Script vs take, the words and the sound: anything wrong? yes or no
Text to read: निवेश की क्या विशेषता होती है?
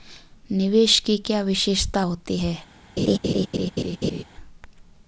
yes